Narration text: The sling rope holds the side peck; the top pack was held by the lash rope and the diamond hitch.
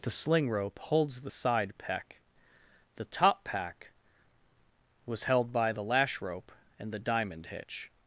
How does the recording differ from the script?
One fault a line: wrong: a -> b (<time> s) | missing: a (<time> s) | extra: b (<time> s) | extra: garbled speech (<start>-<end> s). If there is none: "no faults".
no faults